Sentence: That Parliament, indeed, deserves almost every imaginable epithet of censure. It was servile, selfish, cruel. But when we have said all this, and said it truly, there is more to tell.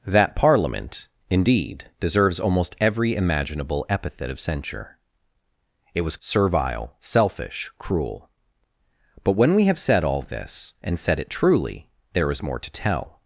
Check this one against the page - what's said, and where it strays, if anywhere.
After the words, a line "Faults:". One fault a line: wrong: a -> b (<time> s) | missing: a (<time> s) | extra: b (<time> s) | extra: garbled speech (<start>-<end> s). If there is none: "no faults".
That Parliament, indeed, deserves almost every imaginable epithet of censure. It was servile, selfish, cruel. But when we have said all this, and said it truly, there is more to tell.
Faults:
no faults